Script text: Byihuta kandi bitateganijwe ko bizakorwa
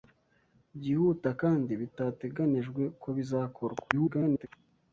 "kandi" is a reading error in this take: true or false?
false